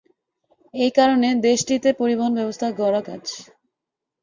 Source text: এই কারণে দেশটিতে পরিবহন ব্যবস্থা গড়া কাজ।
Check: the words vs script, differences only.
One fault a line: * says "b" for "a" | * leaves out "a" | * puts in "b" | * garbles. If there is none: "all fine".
all fine